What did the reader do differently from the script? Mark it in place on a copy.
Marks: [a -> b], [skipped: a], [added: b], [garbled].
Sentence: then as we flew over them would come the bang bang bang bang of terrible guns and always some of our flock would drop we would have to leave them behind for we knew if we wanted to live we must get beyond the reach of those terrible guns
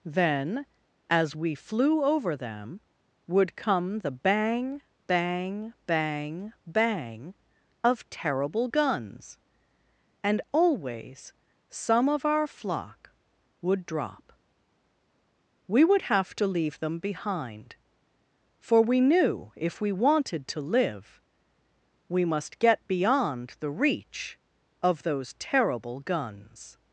then as we flew over them would come the bang bang bang bang of terrible guns and always some of our flock would drop we would have to leave them behind for we knew if we wanted to live we must get beyond the reach of those terrible guns